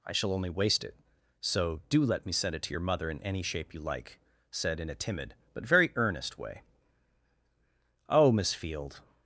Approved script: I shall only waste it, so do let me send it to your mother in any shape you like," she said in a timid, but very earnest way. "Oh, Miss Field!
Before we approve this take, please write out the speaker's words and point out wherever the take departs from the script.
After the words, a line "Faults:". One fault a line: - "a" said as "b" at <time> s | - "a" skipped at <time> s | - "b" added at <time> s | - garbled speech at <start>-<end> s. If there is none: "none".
I shall only waste it, so do let me send it to your mother in any shape you like," said in a timid, but very earnest way. "Oh, Miss Field!
Faults:
- "she" skipped at 4.2 s